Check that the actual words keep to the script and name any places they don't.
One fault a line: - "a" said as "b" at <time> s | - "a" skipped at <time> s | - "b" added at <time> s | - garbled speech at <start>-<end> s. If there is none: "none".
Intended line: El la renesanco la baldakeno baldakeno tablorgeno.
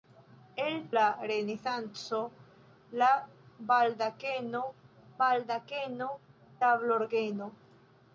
none